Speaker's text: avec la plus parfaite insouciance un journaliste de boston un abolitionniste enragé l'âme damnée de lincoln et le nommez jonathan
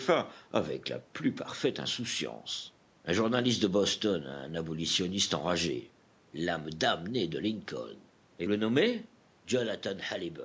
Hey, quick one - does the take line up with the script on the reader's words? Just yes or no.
yes